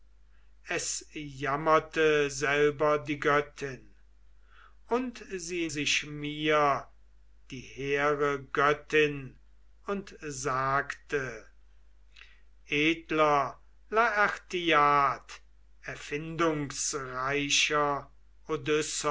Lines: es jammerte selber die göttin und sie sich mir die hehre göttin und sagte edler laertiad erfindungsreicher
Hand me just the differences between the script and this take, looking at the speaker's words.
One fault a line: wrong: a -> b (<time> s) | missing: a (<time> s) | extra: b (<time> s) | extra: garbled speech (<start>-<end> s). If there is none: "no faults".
no faults